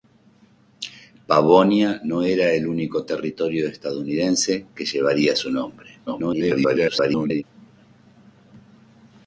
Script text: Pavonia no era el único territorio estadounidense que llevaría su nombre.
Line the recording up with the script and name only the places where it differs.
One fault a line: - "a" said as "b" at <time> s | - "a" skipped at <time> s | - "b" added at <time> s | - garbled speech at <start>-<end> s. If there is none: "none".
- garbled speech at 6.1-7.4 s